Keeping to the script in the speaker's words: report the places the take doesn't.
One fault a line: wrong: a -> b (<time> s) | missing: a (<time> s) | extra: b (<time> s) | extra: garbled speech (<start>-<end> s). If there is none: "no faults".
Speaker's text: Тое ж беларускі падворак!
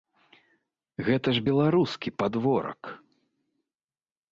wrong: Тое -> Гэта (1.1 s)